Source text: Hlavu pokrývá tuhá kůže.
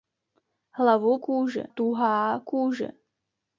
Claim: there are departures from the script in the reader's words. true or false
true